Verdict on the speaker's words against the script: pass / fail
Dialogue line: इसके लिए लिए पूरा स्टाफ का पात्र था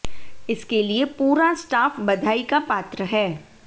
fail